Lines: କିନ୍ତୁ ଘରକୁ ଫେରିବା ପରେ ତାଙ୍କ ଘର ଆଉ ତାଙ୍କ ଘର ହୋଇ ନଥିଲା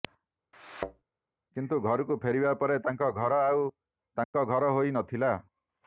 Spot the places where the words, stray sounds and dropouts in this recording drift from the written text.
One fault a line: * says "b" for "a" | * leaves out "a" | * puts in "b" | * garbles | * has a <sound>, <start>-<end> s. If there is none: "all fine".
* has a thud, 0.5-1.0 s
* has a dropout, 4.2-4.3 s